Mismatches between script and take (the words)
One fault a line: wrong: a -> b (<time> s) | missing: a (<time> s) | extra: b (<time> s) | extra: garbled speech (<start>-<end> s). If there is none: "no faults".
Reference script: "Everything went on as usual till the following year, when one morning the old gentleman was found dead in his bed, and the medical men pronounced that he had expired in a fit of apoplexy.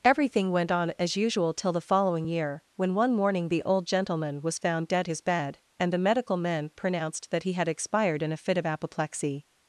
missing: in (5.1 s)